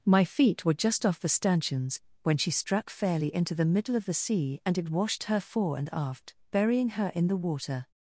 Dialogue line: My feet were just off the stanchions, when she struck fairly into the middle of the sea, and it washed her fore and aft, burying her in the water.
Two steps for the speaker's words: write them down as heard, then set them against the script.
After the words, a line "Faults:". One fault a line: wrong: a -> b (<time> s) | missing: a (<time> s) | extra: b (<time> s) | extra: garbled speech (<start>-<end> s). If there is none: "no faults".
My feet were just off the stanchions, when she struck fairly into the middle of the sea, and it washed her fore and aft, burying her in the water.
Faults:
no faults